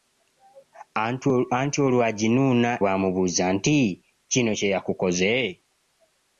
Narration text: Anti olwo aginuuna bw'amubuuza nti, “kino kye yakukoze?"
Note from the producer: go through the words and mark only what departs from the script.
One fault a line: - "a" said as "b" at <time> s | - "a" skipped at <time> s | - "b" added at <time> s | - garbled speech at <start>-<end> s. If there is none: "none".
none